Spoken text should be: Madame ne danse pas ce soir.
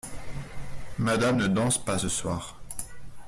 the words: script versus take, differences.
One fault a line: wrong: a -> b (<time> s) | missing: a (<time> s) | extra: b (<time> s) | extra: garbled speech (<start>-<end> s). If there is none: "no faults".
no faults